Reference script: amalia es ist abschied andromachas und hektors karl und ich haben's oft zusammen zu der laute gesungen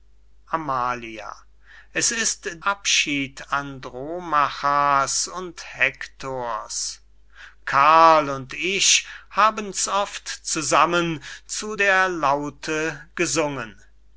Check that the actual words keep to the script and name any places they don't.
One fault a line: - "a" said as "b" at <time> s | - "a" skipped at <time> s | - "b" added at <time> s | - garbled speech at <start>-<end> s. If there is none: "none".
none